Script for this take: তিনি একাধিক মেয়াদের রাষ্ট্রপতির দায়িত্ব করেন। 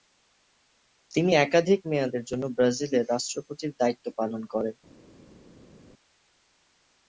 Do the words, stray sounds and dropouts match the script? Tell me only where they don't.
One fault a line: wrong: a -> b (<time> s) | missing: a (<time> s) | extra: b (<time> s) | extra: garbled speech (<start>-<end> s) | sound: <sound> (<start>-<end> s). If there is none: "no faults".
extra: জন্য ব্রাজিলের (2.2 s)
extra: পালন (4.2 s)